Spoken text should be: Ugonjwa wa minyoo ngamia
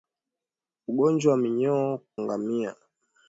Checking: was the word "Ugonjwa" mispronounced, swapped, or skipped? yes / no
no